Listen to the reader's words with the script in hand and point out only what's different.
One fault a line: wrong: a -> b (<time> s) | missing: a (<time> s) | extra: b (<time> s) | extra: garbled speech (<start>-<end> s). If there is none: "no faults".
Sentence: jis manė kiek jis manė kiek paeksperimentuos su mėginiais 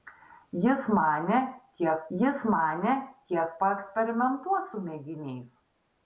no faults